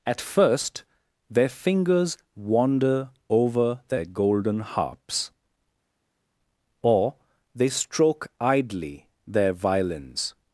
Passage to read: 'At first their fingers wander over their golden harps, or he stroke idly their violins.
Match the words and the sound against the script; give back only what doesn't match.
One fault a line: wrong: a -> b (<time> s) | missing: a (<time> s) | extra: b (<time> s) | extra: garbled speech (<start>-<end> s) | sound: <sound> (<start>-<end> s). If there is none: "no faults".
wrong: he -> they (7.5 s)